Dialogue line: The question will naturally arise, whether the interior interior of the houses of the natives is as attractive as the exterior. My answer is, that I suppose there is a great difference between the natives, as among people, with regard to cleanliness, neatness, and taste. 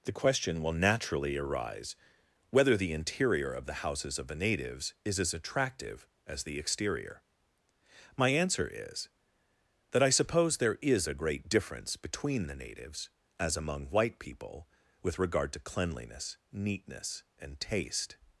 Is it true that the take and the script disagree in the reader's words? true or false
true